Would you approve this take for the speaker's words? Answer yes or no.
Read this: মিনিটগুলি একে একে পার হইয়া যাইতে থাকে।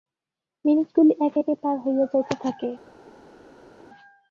yes